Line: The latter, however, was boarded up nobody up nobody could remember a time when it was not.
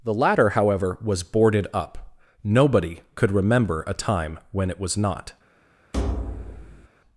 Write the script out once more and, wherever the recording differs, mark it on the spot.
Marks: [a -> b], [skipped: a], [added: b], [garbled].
The latter, however, was boarded up nobody [skipped: up nobody] could remember a time when it was not.